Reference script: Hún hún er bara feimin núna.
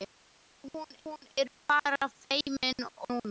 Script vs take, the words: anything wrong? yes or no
no